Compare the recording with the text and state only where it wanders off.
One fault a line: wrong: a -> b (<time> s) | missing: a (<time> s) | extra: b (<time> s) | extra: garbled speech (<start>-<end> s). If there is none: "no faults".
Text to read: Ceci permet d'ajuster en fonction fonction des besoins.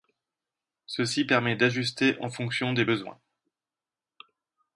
missing: fonction (2.7 s)